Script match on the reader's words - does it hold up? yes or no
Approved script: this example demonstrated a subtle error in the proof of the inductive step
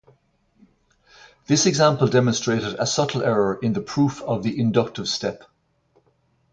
yes